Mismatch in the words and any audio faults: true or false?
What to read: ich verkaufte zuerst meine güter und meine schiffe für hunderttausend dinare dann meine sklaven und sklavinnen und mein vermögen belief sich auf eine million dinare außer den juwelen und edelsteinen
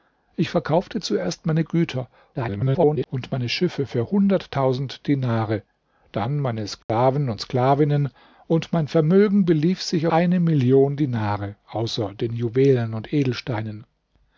true